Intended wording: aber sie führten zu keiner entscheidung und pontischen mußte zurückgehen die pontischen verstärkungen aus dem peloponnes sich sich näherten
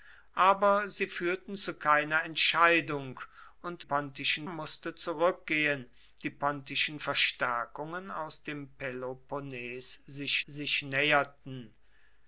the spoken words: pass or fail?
pass